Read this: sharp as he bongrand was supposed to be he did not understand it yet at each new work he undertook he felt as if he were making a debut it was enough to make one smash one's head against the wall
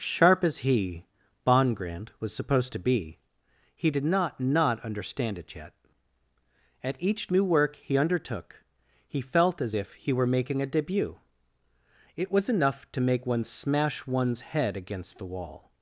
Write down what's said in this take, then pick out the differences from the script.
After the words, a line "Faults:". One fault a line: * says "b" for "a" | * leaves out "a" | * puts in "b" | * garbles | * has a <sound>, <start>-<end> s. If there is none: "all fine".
sharp as he bongrand was supposed to be he did not not understand it yet at each new work he undertook he felt as if he were making a debut it was enough to make one smash one's head against the wall
Faults:
* puts in "not"